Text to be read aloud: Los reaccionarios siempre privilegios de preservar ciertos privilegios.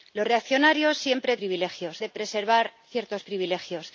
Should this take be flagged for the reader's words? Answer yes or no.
no